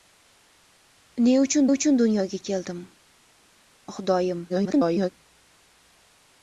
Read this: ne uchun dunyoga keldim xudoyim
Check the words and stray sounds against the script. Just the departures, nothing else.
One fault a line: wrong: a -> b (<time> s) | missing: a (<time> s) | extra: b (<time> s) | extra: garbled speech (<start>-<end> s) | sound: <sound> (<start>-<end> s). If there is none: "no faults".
extra: uchun (1.7 s)
extra: garbled speech (4.5-5.1 s)